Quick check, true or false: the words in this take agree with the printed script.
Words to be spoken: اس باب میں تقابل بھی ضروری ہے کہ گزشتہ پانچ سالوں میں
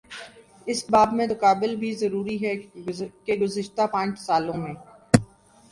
true